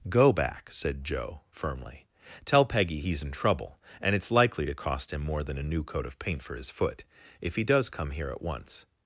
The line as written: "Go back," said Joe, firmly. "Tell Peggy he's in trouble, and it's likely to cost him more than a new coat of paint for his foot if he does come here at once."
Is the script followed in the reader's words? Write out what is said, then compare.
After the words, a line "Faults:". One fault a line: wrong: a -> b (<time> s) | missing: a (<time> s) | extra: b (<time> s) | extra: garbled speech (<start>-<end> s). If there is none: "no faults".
"Go back," said Joe, firmly. "Tell Peggy he's in trouble, and it's likely to cost him more than a new coat of paint for his foot if he does come here at once."
Faults:
no faults